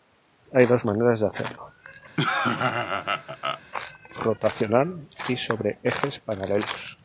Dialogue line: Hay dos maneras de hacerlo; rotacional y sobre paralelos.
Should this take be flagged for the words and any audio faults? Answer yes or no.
yes